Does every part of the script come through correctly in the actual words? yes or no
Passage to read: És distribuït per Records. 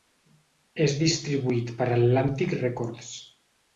no